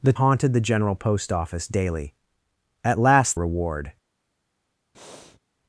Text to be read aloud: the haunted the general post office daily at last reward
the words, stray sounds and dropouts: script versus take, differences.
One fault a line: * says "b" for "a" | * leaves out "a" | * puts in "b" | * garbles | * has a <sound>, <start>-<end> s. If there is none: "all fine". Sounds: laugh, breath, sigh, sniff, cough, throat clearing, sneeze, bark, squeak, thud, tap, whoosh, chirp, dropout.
* has a breath, 4.9-5.4 s